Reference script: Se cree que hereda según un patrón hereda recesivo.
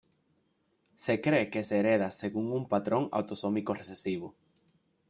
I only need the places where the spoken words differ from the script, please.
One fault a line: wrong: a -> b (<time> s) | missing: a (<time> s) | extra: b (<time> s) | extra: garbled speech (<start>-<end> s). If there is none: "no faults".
extra: se (1.6 s)
wrong: hereda -> autosómico (3.1 s)